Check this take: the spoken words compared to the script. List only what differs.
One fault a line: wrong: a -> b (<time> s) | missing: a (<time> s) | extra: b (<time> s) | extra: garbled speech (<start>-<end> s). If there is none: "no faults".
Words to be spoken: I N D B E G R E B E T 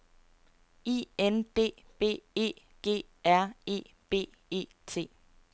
no faults